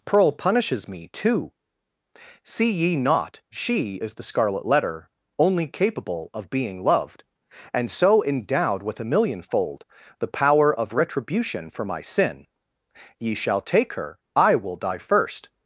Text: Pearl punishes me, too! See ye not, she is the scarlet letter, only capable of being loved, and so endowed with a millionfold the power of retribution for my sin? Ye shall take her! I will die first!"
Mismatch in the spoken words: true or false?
false